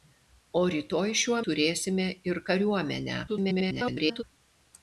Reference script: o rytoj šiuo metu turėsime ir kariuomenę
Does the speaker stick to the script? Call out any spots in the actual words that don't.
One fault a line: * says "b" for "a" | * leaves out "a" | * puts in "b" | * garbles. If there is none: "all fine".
* leaves out "metu"
* garbles